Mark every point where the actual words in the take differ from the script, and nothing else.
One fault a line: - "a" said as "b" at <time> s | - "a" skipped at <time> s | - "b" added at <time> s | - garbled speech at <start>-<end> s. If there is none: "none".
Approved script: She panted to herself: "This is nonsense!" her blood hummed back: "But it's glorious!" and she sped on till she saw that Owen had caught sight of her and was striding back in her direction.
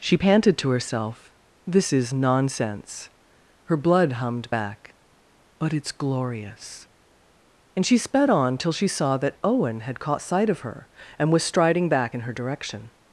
none